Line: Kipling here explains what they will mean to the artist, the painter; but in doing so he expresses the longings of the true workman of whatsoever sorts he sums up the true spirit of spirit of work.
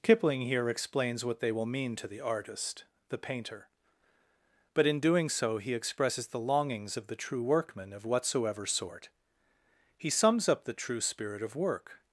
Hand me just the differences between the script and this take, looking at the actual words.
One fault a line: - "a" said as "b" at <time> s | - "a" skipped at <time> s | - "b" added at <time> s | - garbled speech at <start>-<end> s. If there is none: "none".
- "sorts" said as "sort" at 8.6 s
- "spirit of" skipped at 11.6 s